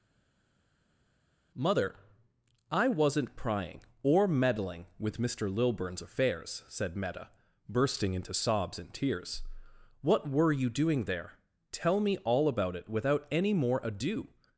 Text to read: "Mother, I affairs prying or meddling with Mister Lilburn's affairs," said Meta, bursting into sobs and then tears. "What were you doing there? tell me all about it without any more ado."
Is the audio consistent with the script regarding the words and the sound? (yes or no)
no